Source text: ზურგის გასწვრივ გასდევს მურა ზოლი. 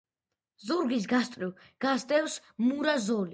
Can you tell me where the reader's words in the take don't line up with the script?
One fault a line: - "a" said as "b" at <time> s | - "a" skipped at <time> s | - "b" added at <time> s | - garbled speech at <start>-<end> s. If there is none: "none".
none